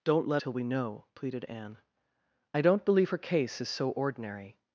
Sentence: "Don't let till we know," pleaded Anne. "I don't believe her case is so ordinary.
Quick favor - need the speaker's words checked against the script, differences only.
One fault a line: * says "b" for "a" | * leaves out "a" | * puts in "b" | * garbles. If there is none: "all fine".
all fine